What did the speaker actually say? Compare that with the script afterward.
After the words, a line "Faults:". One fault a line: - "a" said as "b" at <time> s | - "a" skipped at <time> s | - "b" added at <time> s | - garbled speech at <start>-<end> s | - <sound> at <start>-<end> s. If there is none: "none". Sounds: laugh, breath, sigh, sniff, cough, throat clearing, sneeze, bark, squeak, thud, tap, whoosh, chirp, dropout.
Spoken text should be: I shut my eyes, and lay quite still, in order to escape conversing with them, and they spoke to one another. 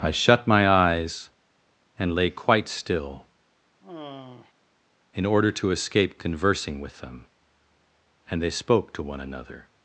I shut my eyes, and lay quite still, in order to escape conversing with them, and they spoke to one another.
Faults:
- sigh at 3.8-4.5 s